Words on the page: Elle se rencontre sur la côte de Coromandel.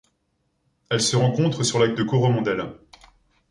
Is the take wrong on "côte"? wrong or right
wrong